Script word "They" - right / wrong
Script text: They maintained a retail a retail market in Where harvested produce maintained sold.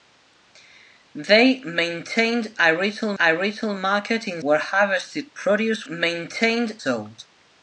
right